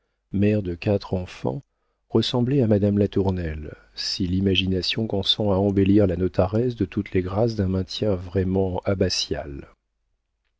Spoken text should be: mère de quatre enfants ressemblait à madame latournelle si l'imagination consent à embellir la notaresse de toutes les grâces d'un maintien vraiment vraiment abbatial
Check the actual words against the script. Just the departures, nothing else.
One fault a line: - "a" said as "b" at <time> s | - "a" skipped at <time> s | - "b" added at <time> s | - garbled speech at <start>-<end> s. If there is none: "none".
- "vraiment" skipped at 8.8 s